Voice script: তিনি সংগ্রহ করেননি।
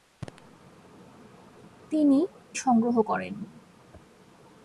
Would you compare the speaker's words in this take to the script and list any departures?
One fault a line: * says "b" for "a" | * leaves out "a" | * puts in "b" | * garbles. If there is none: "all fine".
all fine